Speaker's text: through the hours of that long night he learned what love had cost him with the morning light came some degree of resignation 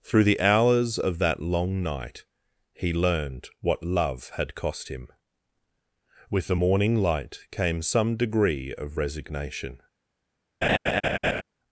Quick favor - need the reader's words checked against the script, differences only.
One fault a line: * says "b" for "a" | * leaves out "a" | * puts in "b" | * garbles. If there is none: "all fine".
all fine